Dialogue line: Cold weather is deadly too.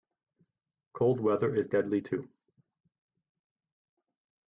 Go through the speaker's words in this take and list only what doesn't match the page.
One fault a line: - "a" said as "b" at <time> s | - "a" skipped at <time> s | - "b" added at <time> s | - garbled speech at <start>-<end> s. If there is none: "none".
none